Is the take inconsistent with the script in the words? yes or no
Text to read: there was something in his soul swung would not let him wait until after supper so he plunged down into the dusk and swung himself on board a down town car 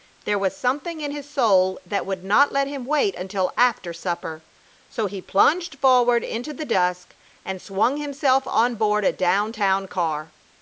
yes